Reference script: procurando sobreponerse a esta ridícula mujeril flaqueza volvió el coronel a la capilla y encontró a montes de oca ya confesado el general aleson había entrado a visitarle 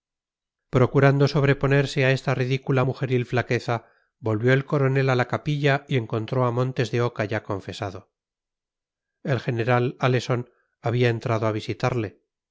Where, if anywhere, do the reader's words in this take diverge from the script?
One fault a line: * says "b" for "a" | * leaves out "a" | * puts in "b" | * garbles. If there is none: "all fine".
all fine